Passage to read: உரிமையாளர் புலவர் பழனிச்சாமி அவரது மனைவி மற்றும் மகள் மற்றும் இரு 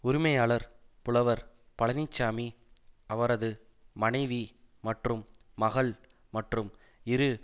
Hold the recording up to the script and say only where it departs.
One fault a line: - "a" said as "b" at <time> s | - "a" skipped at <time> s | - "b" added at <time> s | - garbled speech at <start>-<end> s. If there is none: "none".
none